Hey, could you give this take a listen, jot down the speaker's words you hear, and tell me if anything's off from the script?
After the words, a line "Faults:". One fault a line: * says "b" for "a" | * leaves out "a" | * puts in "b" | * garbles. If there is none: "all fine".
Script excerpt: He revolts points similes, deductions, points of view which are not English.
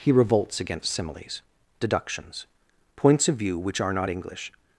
He revolts against similes, deductions, points of view which are not English.
Faults:
* says "against" for "points"